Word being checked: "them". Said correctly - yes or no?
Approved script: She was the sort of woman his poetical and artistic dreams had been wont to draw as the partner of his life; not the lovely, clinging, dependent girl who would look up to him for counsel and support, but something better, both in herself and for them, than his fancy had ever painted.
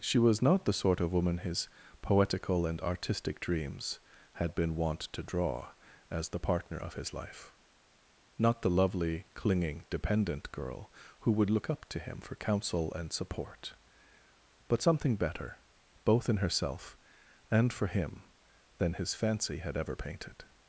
no